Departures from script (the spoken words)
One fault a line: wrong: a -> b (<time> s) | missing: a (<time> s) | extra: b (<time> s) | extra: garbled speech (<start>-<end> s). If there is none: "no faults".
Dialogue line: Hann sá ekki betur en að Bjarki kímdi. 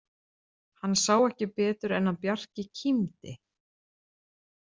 no faults